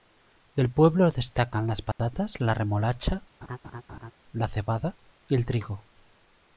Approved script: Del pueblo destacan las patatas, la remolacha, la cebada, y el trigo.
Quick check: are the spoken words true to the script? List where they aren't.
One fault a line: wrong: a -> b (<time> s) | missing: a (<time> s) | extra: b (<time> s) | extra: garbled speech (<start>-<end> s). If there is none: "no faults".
no faults